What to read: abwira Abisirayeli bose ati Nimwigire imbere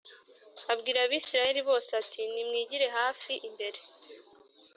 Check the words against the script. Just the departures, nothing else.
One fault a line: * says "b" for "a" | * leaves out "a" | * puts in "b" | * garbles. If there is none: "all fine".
* puts in "hafi"